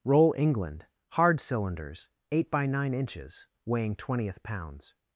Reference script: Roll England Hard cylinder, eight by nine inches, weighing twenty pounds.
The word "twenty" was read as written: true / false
false